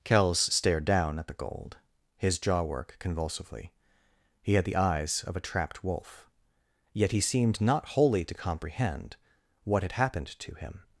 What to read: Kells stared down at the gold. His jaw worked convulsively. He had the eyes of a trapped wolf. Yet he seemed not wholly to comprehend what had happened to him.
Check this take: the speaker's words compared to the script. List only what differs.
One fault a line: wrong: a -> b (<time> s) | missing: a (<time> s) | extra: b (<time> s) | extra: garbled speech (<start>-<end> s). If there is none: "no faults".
wrong: worked -> work (2.6 s)